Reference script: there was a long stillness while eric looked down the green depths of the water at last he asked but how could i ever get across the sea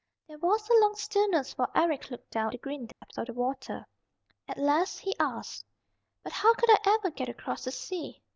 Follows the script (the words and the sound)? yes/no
no